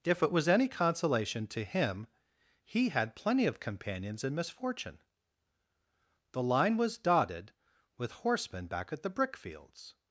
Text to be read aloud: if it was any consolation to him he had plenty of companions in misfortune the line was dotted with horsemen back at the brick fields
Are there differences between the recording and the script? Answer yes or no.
no